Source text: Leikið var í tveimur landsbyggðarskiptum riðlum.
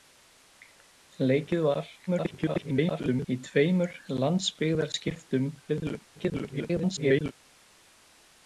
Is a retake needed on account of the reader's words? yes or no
yes